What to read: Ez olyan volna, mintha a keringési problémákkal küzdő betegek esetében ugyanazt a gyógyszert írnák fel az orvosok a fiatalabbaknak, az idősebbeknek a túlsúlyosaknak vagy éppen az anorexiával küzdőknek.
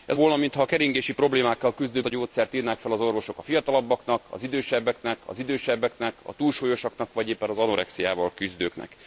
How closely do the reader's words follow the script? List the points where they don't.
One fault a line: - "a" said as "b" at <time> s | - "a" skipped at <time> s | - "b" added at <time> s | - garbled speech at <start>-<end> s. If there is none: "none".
- "olyan" skipped at 0.2 s
- "betegek esetében ugyanazt" skipped at 2.0 s
- "az idősebbeknek" added at 5.3 s